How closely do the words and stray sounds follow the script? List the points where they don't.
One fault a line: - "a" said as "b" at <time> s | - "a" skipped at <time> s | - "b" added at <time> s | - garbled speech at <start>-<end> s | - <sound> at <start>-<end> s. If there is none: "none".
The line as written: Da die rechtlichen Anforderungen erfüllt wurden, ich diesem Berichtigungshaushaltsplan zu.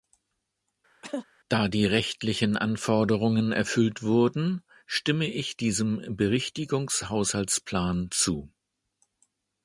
- cough at 1.0-1.3 s
- "stimme" added at 4.9 s